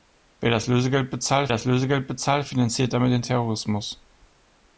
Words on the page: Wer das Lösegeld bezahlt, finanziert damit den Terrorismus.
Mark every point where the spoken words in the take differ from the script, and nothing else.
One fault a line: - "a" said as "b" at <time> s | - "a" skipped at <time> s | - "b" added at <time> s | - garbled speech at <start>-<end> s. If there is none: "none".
- "das Lösegeld bezahlt" added at 1.5 s